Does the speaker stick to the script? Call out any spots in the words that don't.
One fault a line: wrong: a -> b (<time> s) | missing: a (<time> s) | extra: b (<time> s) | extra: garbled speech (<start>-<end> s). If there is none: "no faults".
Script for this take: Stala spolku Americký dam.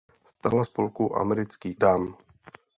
no faults